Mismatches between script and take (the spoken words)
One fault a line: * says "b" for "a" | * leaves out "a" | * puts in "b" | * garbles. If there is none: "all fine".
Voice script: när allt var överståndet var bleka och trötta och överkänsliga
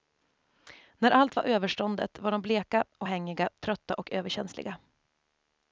* puts in "de"
* puts in "hängiga"